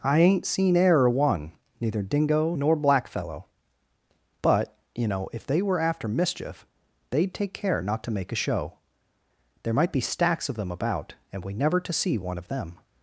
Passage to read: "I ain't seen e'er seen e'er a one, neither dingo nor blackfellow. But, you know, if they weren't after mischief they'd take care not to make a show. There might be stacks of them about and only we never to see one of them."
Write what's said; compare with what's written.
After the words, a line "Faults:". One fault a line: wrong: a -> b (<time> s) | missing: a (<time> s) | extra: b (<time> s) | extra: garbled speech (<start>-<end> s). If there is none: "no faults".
"I ain't seen e'er a one, neither dingo nor blackfellow. But, you know, if they were after mischief they'd take care not to make a show. There might be stacks of them about and we never to see one of them."
Faults:
missing: seen e'er (1.1 s)
wrong: weren't -> were (5.6 s)
missing: only (11.4 s)